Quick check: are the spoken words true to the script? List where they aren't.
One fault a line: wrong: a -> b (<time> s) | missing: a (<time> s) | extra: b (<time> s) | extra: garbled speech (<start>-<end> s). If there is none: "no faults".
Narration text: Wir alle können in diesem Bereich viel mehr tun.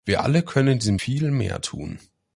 missing: Bereich (1.0 s)